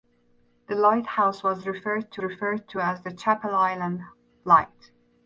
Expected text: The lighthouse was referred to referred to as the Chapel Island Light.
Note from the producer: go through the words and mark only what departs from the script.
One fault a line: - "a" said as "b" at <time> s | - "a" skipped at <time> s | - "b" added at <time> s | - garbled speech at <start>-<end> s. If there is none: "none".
none